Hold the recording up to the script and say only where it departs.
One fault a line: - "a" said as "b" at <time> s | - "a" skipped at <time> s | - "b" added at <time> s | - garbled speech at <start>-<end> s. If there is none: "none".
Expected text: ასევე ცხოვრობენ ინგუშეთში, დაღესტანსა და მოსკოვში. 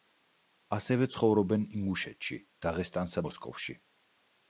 - "და" skipped at 3.2 s